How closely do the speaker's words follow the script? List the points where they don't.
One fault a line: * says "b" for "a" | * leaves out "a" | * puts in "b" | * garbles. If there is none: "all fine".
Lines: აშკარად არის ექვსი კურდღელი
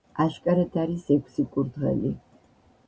all fine